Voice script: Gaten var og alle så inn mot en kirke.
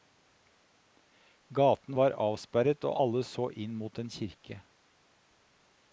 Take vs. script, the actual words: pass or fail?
fail